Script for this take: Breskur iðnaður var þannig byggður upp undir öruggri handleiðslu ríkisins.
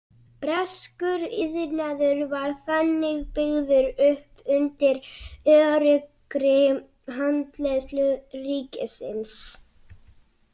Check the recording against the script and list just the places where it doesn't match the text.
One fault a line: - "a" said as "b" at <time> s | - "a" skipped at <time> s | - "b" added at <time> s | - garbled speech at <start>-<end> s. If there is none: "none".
none